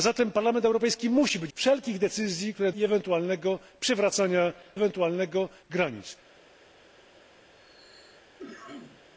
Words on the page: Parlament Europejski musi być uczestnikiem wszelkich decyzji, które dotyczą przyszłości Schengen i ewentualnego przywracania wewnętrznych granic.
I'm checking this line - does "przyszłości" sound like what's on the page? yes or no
no